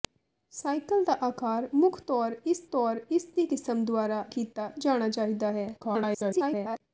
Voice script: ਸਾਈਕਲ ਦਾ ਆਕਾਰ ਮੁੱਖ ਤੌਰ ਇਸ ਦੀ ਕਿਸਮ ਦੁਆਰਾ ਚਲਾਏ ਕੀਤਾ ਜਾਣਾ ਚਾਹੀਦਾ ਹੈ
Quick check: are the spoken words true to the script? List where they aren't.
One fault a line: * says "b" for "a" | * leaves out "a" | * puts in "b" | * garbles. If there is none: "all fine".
* puts in "ਤੌਰ ਇਸ"
* leaves out "ਚਲਾਏ"
* garbles